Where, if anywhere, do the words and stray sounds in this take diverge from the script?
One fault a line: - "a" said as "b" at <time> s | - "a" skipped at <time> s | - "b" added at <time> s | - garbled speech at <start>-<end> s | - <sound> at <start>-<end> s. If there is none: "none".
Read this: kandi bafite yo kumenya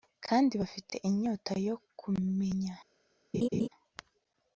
- "inyota" added at 1.1 s
- laugh at 3.3-3.7 s